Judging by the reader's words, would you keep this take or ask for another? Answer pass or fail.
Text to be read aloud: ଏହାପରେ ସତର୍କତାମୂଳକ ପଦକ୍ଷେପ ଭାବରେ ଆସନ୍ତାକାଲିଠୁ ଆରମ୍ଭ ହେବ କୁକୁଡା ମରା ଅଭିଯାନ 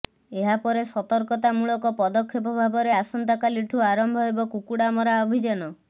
pass